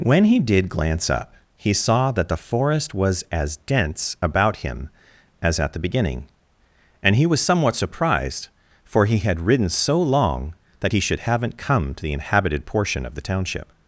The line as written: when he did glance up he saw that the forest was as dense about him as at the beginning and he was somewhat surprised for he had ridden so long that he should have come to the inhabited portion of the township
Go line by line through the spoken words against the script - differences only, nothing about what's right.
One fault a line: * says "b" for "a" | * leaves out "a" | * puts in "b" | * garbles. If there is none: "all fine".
* says "haven't" for "have"